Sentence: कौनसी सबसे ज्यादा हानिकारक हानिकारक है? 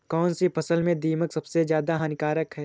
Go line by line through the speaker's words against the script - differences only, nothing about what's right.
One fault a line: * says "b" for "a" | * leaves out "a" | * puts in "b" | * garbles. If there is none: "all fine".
* puts in "फसल में दीमक"
* leaves out "हानिकारक"